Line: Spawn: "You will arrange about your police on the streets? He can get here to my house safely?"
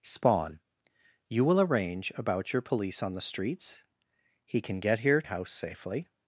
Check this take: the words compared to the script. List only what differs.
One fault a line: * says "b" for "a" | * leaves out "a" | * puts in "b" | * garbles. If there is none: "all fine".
* leaves out "to my"